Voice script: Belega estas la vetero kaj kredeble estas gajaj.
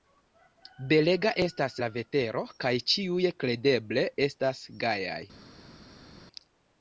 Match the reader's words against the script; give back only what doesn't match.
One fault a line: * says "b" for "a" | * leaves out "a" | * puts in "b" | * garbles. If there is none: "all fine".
* puts in "ĉiuj"